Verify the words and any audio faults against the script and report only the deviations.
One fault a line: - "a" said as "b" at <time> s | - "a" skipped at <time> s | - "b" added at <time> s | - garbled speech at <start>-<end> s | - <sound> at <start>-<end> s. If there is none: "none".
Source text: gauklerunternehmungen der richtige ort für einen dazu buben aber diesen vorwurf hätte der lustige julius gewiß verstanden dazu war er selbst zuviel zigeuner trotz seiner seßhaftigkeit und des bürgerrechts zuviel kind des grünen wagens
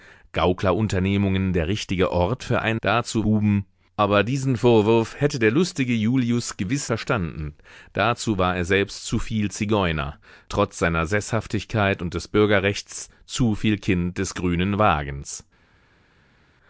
none